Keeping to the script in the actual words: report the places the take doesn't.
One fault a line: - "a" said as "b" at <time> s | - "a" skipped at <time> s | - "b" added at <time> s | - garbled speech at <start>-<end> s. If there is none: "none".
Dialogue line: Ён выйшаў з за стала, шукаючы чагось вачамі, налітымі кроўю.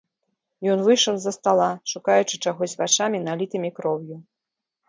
none